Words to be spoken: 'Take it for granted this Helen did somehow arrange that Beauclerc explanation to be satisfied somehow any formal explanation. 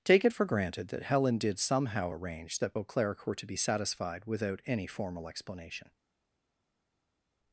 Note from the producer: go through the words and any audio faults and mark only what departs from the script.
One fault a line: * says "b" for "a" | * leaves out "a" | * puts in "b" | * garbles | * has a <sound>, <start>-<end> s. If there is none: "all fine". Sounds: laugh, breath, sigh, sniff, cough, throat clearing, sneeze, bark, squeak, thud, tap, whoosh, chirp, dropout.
* says "that" for "this"
* says "were" for "explanation"
* says "without" for "somehow"